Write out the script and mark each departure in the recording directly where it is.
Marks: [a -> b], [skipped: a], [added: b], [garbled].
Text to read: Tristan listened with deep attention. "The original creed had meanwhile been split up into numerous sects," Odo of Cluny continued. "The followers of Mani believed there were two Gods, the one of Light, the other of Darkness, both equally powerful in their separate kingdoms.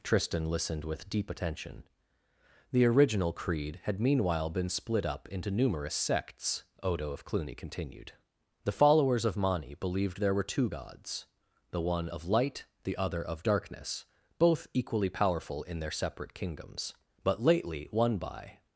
Tristan listened with deep attention. "The original creed had meanwhile been split up into numerous sects," Odo of Cluny continued. "The followers of Mani believed there were two Gods, the one of Light, the other of Darkness, both equally powerful in their separate kingdoms. [added: But lately one by]